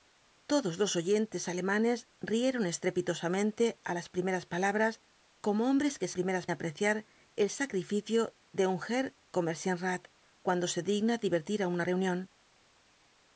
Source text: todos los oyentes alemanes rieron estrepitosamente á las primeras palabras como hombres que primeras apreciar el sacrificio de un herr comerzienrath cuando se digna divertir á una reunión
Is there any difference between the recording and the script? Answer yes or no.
no